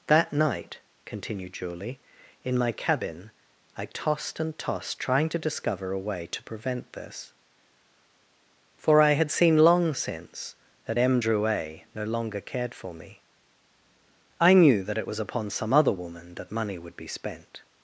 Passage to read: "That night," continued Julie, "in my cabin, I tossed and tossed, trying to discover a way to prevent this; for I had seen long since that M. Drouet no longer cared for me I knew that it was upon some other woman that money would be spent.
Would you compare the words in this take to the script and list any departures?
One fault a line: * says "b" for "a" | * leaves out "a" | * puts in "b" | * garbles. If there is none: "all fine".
all fine